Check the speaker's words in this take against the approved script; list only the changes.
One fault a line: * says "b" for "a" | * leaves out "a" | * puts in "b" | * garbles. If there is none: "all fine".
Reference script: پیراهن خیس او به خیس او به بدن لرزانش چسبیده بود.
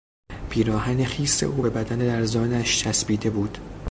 * leaves out "خیس او به"